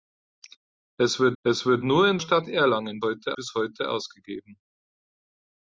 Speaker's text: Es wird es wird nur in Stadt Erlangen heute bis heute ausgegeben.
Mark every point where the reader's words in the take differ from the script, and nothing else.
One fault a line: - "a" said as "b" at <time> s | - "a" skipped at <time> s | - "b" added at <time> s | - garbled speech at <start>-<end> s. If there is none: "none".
none